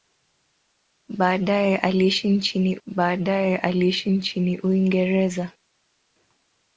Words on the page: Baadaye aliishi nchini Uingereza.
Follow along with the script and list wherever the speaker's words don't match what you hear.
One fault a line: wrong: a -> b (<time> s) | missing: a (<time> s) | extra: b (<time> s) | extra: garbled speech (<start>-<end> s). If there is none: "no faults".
extra: baadaye aliishi nchini (2.9 s)